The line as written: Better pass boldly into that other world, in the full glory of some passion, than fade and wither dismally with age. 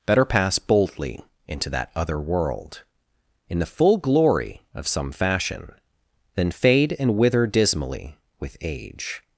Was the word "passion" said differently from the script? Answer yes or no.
yes